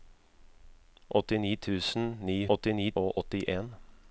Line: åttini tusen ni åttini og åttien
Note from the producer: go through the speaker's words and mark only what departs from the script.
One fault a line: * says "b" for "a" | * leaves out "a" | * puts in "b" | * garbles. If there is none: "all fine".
all fine